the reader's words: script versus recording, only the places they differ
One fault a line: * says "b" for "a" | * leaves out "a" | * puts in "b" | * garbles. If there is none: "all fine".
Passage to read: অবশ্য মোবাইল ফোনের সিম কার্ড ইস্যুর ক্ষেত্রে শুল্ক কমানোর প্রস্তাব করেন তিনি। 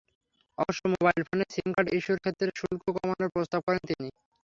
all fine